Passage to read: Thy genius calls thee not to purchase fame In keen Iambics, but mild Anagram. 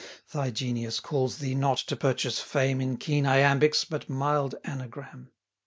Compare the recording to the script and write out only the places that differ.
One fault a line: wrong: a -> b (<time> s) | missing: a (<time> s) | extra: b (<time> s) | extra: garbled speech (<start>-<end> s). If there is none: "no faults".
no faults